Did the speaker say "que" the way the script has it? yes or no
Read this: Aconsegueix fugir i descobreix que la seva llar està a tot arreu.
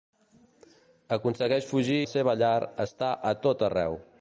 no